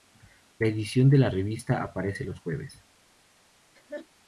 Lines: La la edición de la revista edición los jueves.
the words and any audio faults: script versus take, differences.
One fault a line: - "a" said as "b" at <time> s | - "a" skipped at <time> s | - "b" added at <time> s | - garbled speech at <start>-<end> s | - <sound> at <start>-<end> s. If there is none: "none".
- "la" skipped at 0.7 s
- "edición" said as "aparece" at 1.8 s
- laugh at 3.7-4.1 s